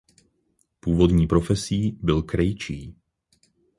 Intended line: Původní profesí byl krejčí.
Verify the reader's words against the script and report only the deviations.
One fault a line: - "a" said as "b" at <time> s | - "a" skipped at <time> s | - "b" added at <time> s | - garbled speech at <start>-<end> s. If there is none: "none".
none